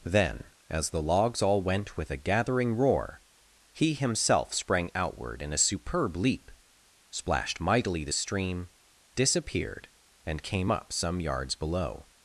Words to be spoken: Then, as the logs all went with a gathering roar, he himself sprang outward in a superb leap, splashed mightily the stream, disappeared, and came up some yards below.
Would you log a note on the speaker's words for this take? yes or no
no